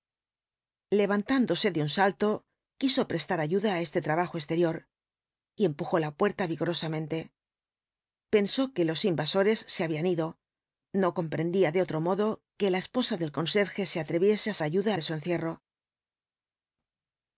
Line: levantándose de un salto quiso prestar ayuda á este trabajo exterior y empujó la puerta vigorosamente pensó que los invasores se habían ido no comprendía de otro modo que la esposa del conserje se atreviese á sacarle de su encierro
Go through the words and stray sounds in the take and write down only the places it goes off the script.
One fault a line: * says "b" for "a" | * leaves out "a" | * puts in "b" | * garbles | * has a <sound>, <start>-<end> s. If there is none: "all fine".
* says "ayuda" for "sacarle"